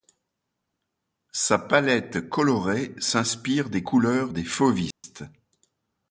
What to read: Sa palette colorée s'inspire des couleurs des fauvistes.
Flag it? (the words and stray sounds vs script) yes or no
yes